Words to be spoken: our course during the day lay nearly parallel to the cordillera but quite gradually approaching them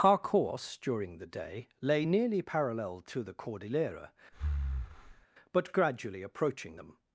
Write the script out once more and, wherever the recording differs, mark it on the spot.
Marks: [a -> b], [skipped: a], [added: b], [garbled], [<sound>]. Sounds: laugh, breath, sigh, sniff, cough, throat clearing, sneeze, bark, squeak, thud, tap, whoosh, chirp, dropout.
our course during the day lay nearly parallel to the cordillera [breath] but [skipped: quite] gradually approaching them